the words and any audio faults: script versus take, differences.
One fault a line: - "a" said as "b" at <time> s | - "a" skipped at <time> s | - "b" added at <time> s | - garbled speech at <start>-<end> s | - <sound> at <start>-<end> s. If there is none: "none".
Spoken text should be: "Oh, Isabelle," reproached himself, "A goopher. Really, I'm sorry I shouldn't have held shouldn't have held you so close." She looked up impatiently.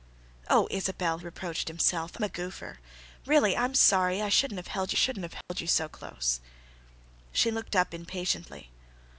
- dropout at 5.4-5.5 s